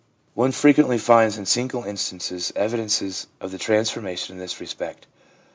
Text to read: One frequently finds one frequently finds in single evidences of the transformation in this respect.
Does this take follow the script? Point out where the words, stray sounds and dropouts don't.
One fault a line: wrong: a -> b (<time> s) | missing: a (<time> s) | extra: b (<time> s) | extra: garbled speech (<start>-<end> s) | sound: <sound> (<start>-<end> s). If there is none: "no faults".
missing: one frequently finds (1.4 s)
extra: instances (1.8 s)